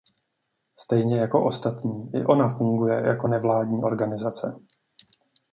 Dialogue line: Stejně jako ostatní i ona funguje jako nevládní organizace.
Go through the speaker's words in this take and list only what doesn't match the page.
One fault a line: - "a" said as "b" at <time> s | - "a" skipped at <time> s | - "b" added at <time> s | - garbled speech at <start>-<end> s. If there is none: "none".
none